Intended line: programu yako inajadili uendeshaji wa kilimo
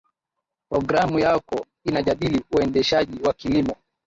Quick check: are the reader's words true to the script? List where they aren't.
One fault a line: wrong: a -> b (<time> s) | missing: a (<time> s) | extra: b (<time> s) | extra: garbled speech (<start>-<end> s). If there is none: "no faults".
no faults